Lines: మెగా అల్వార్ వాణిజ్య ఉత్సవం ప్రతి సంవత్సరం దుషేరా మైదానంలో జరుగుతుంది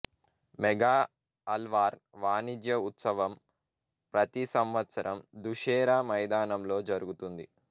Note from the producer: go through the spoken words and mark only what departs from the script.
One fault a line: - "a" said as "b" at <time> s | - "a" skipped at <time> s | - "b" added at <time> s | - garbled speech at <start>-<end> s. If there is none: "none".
none